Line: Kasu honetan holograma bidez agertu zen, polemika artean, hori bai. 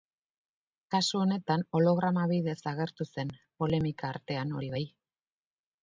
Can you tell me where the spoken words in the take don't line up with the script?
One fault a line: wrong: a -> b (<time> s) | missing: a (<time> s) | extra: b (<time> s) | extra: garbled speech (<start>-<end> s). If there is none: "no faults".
no faults